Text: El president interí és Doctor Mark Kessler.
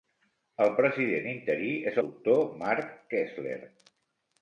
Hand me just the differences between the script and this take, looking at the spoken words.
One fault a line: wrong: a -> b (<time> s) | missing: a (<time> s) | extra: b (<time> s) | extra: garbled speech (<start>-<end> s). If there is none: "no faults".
no faults